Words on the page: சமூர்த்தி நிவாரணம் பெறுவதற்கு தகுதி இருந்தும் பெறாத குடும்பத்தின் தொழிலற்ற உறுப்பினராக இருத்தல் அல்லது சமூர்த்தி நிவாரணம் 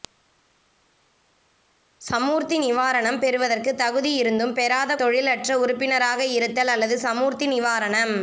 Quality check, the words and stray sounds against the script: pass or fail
fail